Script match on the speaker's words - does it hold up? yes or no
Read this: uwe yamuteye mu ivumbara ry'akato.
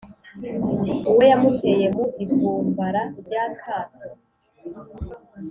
yes